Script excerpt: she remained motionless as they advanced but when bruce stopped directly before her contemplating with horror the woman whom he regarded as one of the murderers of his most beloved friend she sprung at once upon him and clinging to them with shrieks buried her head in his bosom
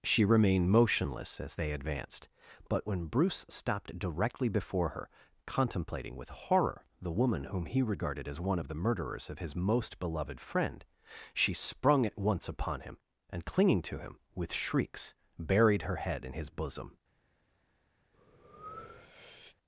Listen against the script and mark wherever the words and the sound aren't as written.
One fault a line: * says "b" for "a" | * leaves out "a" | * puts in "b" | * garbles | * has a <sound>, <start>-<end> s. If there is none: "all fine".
* says "him" for "them"
* has a breath, 18.1-19.6 s